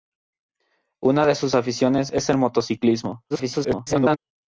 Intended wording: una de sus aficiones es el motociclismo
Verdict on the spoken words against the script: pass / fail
fail